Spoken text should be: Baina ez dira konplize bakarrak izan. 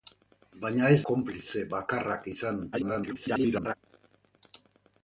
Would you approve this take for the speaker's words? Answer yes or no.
no